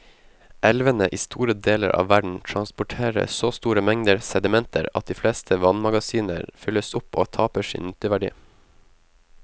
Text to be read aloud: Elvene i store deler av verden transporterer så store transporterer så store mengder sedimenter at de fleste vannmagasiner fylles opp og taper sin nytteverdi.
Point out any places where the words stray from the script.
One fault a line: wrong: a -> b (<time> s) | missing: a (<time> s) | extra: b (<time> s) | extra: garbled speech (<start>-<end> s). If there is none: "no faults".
missing: transporterer så store (3.8 s)